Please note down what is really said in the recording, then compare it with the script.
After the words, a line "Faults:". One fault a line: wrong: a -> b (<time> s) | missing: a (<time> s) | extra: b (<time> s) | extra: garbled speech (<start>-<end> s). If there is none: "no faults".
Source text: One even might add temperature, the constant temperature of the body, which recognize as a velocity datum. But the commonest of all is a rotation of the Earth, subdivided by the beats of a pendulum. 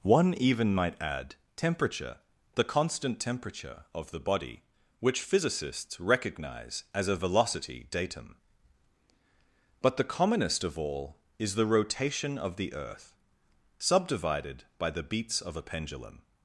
One even might add temperature, the constant temperature of the body, which physicists recognize as a velocity datum. But the commonest of all is the rotation of the Earth, subdivided by the beats of a pendulum.
Faults:
extra: physicists (5.2 s)
wrong: a -> the (11.6 s)